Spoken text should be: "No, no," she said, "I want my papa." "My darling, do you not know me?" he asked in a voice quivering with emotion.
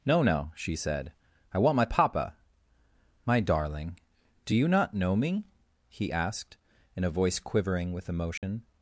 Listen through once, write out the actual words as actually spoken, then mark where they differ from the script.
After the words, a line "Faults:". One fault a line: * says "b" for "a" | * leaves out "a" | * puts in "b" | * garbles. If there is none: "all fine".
"No, no," she said, "I want my papa." "My darling, do you not know me?" he asked in a voice quivering with emotion.
Faults:
all fine